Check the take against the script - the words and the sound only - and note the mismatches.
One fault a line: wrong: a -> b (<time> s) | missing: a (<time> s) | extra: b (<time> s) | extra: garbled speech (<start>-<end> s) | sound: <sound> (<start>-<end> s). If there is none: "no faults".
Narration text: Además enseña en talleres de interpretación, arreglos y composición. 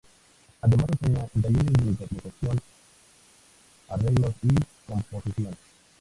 no faults